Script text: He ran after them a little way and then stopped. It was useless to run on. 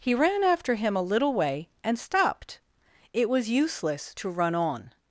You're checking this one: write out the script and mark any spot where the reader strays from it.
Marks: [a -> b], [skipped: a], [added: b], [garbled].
He ran after [them -> him] a little way and [skipped: then] stopped. It was useless to run on.